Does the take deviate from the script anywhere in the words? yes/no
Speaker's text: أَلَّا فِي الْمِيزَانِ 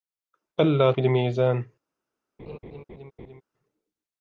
no